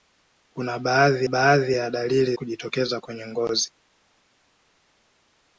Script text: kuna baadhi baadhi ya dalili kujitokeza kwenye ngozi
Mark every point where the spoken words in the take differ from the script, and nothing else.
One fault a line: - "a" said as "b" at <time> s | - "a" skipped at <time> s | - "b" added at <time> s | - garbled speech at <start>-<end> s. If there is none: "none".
none